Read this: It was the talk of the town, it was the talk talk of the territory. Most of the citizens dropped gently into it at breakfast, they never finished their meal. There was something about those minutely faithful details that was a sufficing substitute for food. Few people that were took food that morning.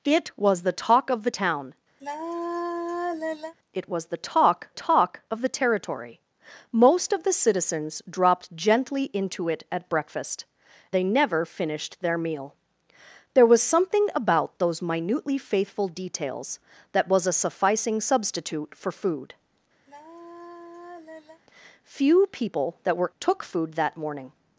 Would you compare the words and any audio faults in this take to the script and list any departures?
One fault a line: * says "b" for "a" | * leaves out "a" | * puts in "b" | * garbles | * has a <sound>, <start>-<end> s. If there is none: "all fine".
* has a sigh, 2.0-3.5 s
* has a sigh, 19.9-21.4 s